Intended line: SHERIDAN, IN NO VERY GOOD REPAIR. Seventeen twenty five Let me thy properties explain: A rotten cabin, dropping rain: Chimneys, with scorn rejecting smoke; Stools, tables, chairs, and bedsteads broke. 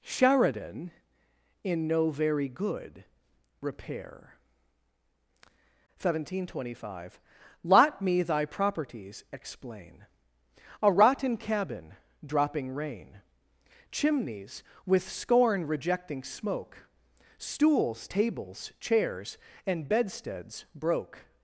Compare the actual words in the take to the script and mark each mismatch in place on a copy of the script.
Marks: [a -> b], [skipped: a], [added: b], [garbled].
SHERIDAN, IN NO VERY GOOD REPAIR. Seventeen twenty five [Let -> Lot] me thy properties explain: A rotten cabin, dropping rain: Chimneys, with scorn rejecting smoke; Stools, tables, chairs, and bedsteads broke.